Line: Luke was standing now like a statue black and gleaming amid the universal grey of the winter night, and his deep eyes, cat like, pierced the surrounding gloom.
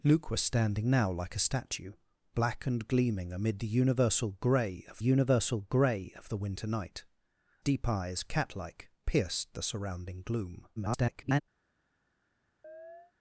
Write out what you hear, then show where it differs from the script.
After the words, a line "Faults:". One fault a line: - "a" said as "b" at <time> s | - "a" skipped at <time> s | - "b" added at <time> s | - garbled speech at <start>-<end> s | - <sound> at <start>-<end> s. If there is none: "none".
Luke was standing now like a statue black and gleaming amid the universal grey of universal grey of the winter night, deep eyes, cat like, pierced the surrounding gloom. [garbled]
Faults:
- "universal grey of" added at 5.0 s
- "and his" skipped at 7.1 s
- garbled speech at 10.8-11.4 s
- chirp at 12.6-13.1 s